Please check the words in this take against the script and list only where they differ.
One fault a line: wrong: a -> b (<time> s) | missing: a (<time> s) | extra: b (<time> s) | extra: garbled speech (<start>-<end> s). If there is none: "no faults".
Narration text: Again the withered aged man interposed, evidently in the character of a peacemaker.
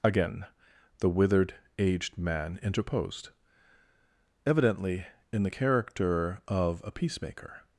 no faults